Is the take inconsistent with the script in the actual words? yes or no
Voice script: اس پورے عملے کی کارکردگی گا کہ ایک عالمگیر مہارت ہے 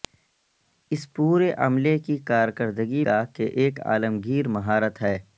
no